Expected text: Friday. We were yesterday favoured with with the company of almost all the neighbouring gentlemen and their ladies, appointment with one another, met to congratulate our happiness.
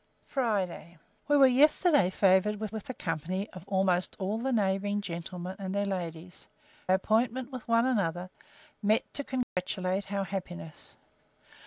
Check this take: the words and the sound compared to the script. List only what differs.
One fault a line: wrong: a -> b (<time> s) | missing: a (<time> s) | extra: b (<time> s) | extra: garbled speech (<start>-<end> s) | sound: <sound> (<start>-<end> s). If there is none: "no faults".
sound: dropout (9.4-9.6 s)